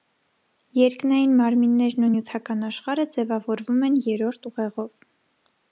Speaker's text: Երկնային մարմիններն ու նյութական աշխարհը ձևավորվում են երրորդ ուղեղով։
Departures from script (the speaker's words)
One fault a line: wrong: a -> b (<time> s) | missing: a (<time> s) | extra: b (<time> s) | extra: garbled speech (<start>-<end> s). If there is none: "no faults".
no faults